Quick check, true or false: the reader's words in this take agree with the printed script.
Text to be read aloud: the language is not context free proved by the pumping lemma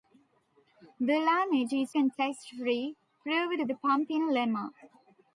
false